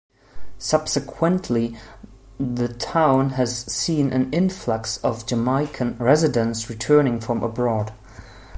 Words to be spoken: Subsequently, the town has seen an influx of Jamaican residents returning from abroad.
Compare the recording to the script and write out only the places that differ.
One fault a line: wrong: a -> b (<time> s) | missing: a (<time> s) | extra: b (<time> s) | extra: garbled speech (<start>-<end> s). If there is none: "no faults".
no faults